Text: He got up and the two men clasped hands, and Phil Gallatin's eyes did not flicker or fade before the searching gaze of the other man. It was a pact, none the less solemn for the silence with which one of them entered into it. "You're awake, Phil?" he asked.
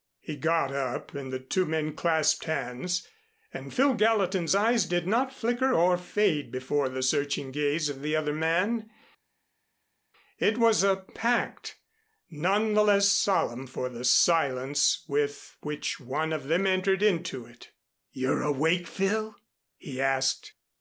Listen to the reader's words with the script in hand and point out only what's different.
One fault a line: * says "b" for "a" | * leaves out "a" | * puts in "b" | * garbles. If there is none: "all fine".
all fine